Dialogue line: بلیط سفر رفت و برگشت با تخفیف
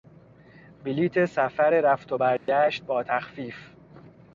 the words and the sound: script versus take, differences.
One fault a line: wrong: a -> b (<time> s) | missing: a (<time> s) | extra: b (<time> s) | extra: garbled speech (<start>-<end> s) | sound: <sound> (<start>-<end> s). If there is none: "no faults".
sound: dropout (2.4-2.5 s)